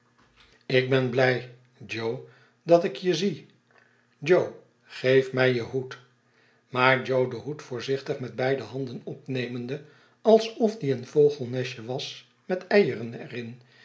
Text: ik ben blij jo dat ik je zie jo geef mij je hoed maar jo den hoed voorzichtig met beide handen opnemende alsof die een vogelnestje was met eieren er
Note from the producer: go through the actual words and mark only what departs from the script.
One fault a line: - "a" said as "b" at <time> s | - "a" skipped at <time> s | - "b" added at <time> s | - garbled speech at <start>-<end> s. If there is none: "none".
none